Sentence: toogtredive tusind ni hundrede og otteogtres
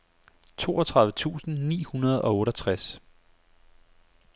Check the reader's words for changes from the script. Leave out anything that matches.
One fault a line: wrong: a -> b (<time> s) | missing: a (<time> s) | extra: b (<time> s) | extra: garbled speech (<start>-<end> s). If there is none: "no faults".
no faults